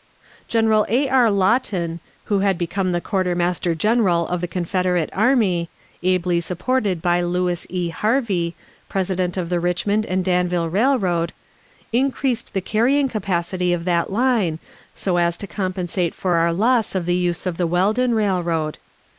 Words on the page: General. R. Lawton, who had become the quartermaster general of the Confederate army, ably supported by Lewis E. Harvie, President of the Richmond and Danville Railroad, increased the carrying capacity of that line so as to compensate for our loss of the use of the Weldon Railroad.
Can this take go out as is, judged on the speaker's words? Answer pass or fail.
fail